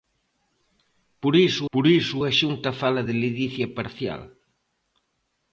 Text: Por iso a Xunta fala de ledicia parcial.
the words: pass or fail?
fail